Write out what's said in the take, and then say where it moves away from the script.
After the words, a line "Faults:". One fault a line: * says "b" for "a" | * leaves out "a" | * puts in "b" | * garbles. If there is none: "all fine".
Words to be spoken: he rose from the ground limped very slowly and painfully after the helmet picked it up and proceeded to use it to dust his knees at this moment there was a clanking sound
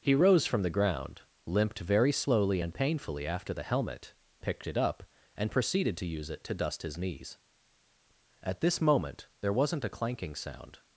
he rose from the ground limped very slowly and painfully after the helmet picked it up and proceeded to use it to dust his knees at this moment there wasn't a clanking sound
Faults:
* says "wasn't" for "was"